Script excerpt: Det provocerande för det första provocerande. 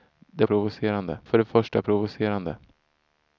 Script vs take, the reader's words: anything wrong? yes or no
no